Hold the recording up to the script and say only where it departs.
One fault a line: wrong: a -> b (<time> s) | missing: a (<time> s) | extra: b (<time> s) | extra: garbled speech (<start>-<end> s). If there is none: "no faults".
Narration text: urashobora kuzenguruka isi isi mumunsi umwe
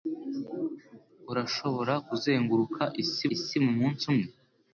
no faults